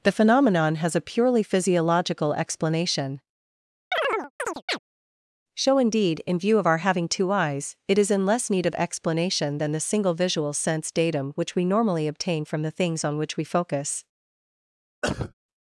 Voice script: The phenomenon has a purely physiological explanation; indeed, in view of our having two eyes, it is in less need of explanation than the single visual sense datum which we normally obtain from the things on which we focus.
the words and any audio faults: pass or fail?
fail